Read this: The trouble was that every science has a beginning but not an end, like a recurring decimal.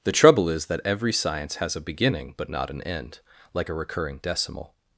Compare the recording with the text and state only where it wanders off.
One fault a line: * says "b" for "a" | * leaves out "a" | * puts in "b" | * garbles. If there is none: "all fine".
* says "is" for "was"